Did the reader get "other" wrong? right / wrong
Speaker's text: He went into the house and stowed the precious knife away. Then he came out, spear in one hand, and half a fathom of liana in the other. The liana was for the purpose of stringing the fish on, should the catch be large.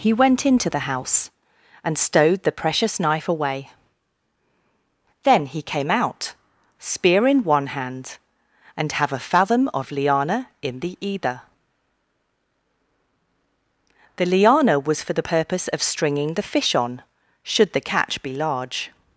wrong